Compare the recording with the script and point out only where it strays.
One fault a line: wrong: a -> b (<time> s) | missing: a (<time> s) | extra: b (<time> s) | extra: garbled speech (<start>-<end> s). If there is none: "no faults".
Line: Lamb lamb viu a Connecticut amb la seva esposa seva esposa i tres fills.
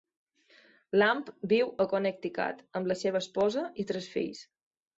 missing: lamb (1.3 s)
missing: seva esposa (3.7 s)